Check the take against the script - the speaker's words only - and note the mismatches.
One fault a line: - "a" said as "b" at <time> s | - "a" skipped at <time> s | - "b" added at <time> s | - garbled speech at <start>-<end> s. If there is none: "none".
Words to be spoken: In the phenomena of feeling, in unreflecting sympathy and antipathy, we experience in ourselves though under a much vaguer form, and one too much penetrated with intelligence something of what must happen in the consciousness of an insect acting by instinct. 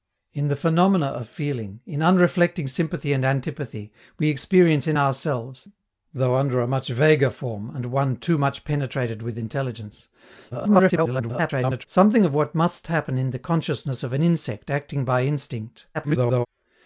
- garbled speech at 10.5-11.9 s
- garbled speech at 15.9-16.5 s